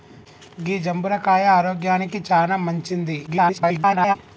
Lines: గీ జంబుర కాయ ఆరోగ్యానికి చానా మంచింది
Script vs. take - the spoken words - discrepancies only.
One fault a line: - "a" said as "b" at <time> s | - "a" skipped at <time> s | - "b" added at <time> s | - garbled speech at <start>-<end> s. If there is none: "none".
- garbled speech at 3.3-4.2 s